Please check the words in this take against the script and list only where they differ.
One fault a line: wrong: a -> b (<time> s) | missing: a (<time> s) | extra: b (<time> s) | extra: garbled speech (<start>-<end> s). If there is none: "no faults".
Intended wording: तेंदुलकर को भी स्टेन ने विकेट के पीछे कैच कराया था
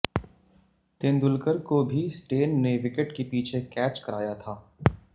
no faults